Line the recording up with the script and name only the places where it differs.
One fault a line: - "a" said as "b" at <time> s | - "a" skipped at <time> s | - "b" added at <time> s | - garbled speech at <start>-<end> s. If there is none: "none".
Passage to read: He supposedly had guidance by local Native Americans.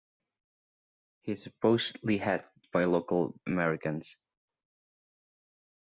- "guidance" skipped at 2.5 s
- "Native" skipped at 3.4 s